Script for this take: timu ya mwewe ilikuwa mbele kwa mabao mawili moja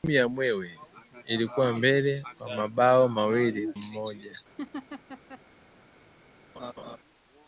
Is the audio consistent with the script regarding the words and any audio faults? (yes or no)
no